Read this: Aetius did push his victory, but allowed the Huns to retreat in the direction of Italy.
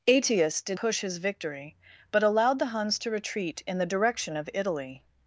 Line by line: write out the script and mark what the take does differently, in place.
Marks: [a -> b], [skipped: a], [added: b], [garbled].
Aetius did push his victory, but allowed the Huns to retreat in the direction of Italy.